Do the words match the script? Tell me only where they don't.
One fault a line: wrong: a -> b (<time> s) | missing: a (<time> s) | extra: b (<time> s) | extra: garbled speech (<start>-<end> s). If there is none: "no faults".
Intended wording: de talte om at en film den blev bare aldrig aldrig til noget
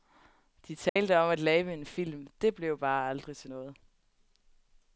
extra: lave (1.4 s)
wrong: den -> det (2.4 s)
missing: aldrig (3.4 s)